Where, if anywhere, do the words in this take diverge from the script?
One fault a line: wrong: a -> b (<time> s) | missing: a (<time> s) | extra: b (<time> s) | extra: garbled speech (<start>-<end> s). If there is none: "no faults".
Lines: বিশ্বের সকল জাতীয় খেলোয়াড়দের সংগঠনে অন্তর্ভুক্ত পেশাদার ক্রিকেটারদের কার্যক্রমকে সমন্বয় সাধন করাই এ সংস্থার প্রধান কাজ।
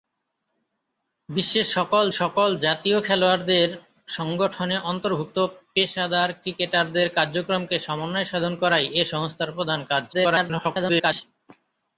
extra: সকল (2.1 s)
extra: garbled speech (10.1-11.2 s)